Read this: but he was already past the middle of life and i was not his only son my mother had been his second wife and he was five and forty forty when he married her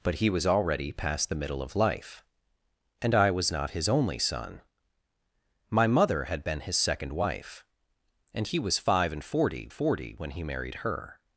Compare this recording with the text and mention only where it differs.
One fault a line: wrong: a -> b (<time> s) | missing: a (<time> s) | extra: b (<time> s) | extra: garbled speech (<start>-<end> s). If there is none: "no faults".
no faults